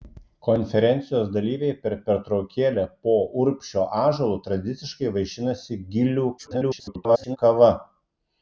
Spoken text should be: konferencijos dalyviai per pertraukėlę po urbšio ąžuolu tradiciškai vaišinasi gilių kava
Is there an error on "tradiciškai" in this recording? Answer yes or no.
no